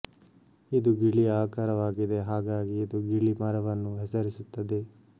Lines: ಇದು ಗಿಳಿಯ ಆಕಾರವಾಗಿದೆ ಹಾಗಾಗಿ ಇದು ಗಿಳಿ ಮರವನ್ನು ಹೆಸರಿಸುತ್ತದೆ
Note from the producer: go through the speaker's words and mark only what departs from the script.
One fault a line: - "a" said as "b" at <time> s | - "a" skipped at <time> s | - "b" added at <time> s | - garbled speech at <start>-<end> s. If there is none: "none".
none